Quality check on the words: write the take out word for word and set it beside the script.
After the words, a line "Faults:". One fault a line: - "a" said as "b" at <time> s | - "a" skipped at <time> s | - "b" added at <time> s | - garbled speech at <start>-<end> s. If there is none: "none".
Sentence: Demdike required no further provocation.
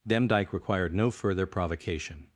Demdike required no further provocation.
Faults:
none